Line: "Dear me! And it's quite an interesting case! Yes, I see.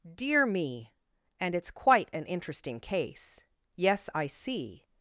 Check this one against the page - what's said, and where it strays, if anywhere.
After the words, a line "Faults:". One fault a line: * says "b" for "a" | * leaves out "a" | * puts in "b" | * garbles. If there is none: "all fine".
"Dear me! And it's quite an interesting case! Yes, I see.
Faults:
all fine